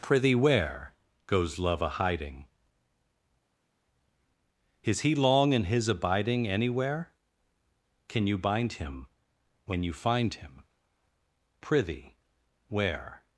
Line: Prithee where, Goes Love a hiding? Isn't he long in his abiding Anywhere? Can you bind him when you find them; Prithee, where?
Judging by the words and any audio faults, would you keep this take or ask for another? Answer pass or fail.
fail